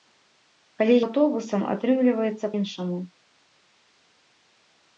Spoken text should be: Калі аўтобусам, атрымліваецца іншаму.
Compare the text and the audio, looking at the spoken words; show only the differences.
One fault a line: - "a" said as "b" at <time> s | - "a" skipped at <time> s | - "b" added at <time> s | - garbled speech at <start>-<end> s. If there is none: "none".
none